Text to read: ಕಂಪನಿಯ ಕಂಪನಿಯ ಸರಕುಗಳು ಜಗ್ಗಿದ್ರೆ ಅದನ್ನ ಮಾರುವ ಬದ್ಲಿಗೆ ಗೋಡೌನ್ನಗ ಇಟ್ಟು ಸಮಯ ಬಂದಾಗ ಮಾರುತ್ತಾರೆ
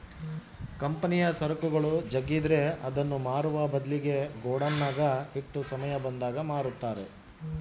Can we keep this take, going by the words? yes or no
no